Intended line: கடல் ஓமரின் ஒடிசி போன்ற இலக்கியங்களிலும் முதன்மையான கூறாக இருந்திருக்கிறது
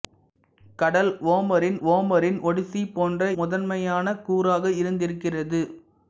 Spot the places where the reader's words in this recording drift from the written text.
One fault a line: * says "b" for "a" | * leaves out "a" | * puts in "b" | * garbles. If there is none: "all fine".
* puts in "ஓமரின்"
* leaves out "இலக்கியங்களிலும்"